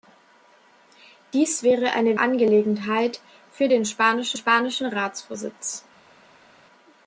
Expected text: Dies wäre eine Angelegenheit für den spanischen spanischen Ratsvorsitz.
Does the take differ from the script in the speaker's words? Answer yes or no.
no